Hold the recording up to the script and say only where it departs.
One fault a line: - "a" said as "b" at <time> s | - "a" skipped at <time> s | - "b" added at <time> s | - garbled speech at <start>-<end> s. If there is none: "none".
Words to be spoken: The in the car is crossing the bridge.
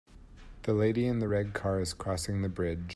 - "lady" added at 0.7 s
- "red" added at 1.3 s